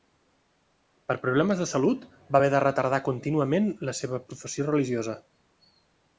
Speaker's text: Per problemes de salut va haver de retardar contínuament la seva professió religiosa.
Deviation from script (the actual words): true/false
false